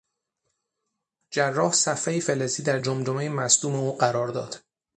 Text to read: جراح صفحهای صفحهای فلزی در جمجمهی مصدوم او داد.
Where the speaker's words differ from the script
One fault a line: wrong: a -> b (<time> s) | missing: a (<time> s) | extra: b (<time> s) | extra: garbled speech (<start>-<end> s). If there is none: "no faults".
missing: صفحهای (2.2 s)
extra: قرار (4.0 s)